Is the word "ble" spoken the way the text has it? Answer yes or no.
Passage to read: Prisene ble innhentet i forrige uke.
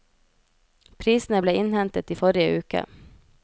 yes